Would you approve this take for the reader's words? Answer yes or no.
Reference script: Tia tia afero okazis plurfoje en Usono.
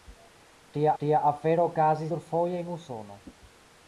yes